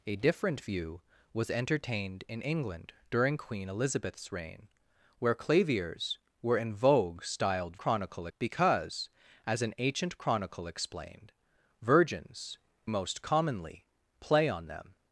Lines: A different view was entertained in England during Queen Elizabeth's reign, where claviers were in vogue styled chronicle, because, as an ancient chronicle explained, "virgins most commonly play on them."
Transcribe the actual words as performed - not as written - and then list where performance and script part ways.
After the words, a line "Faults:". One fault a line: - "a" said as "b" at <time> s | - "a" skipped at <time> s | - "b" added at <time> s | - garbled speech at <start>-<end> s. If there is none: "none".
A different view was entertained in England during Queen Elizabeth's reign, where claviers were in vogue styled chronicle, because, as an ancient chronicle explained, "virgins most commonly play on them."
Faults:
none